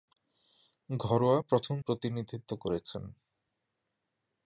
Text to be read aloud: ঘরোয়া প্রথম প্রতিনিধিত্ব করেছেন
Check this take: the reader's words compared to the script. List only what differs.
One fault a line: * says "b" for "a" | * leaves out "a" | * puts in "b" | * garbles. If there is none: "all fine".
all fine